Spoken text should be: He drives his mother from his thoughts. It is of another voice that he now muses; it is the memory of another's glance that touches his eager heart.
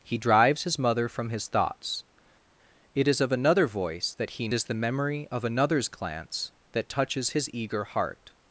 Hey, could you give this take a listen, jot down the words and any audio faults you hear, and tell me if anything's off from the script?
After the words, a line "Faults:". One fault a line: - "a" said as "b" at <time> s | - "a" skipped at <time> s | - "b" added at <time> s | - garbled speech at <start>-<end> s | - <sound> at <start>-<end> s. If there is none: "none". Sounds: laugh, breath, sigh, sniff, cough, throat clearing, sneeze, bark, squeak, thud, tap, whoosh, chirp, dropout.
He drives his mother from his thoughts. It is of another voice that he is the memory of another's glance that touches his eager heart.
Faults:
- "now muses it" skipped at 4.5 s